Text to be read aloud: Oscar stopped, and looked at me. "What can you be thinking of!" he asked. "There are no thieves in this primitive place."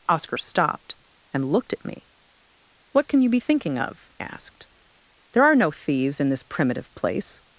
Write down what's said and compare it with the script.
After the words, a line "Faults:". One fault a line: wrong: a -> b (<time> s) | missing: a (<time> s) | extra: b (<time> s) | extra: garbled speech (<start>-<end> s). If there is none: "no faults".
Oscar stopped, and looked at me. "What can you be thinking of!" asked. "There are no thieves in this primitive place."
Faults:
missing: he (4.1 s)